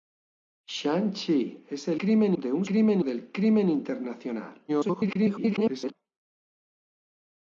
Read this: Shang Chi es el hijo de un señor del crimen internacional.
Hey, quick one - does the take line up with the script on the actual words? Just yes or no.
no